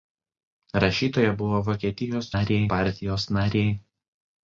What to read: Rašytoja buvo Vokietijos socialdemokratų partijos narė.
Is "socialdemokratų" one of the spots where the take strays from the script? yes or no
yes